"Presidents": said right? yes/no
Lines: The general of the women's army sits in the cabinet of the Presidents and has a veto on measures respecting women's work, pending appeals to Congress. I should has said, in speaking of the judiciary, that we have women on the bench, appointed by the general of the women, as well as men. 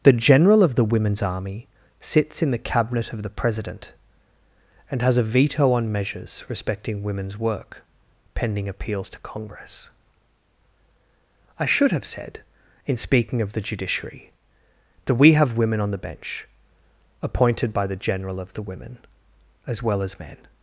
no